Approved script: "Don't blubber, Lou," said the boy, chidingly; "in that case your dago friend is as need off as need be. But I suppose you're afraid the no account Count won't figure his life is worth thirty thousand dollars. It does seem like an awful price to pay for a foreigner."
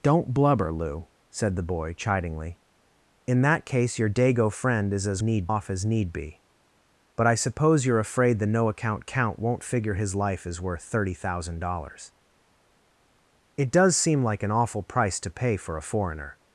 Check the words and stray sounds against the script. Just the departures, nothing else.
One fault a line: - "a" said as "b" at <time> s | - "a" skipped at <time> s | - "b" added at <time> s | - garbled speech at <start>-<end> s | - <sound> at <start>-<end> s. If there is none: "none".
none